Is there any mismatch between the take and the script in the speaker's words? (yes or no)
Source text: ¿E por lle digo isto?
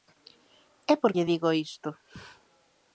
no